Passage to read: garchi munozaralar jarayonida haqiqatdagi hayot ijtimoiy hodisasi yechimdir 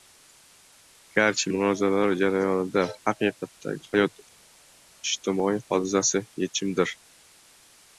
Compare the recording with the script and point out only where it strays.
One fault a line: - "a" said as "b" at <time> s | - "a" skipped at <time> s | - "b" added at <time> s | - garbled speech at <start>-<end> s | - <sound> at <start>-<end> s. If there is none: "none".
none